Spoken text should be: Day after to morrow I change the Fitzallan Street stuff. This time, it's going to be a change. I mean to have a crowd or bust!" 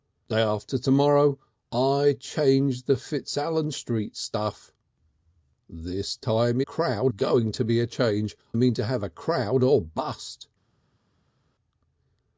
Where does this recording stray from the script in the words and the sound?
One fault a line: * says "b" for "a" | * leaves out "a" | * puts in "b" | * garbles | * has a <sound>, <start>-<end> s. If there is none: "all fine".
* says "crowd" for "it's"
* leaves out "I"